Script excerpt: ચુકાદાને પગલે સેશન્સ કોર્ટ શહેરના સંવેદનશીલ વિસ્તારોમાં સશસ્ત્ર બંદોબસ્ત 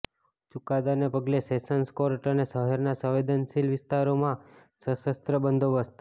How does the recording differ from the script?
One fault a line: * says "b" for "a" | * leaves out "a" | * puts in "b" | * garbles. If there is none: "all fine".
* puts in "અને"